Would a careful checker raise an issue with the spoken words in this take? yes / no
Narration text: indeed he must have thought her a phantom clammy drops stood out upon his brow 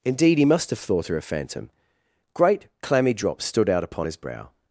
yes